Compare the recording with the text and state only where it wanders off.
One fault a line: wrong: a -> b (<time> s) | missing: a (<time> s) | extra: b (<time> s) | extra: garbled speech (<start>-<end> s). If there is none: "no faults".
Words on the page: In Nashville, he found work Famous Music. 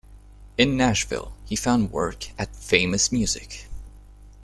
extra: at (2.4 s)